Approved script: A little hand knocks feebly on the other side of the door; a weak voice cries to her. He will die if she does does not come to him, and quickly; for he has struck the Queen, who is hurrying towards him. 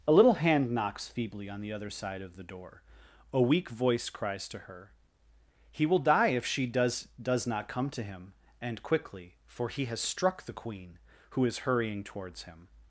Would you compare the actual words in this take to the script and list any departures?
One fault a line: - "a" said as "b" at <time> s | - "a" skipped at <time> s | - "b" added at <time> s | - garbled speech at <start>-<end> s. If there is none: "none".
none